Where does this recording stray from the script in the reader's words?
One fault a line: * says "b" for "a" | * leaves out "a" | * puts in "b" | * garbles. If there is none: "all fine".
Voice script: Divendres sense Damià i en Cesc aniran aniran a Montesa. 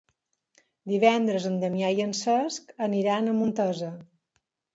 * says "en" for "sense"
* leaves out "aniran"